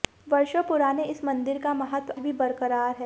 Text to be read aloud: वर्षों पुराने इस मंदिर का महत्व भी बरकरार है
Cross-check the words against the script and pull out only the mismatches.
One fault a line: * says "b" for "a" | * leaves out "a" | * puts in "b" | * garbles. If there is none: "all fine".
all fine